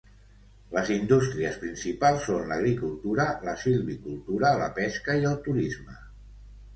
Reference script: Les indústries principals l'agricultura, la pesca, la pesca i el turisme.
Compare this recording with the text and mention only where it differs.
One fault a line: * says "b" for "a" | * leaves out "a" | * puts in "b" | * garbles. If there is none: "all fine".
* puts in "són"
* says "silvicultura" for "pesca"